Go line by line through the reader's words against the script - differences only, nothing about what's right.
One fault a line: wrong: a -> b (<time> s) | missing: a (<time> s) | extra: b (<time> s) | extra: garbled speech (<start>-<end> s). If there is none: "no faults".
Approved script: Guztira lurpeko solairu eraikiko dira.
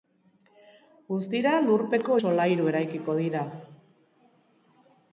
no faults